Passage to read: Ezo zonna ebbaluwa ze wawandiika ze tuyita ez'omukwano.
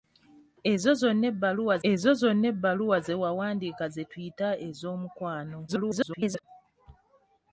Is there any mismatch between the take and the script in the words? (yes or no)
yes